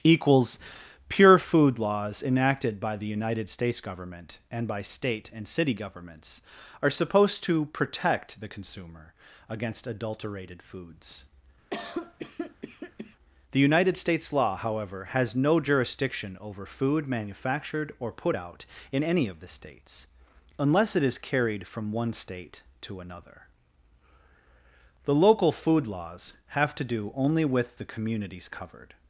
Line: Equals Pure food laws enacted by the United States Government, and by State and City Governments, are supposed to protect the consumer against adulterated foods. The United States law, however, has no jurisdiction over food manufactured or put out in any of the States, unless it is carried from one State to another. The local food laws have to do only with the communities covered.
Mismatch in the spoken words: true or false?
false